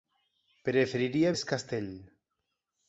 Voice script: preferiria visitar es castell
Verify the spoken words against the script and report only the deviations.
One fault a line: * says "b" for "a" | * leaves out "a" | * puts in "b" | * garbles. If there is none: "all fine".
* leaves out "visitar"